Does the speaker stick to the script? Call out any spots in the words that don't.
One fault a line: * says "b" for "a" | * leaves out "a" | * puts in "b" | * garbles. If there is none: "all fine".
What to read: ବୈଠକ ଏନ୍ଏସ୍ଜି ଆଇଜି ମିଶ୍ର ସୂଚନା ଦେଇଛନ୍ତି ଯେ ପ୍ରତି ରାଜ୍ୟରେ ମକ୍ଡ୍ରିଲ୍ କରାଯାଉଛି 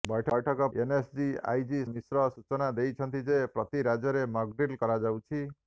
all fine